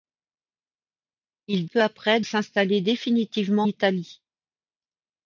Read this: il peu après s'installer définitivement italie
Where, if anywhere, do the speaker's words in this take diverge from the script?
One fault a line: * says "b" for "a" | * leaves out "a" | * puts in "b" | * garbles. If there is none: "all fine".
all fine